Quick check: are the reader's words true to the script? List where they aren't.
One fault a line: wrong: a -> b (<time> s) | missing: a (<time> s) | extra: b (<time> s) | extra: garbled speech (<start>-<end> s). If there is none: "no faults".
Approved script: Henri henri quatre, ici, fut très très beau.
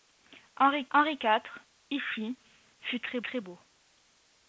no faults